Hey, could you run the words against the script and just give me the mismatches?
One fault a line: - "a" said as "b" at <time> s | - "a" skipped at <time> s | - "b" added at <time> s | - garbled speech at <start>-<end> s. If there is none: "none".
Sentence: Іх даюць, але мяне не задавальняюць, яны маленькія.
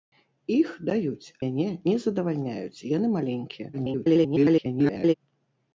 - "але" skipped at 1.3 s
- garbled speech at 3.7-5.1 s